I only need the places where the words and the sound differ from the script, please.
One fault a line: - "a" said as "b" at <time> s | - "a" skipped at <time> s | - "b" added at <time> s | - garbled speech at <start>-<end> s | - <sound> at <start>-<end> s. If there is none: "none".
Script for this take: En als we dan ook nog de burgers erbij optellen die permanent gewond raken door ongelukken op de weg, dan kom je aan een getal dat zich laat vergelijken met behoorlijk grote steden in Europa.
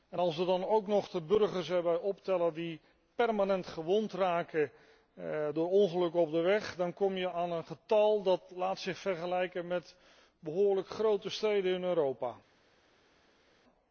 none